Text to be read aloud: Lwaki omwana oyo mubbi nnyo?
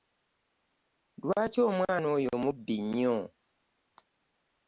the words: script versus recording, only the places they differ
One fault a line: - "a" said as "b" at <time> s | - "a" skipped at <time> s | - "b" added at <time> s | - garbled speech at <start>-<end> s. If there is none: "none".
none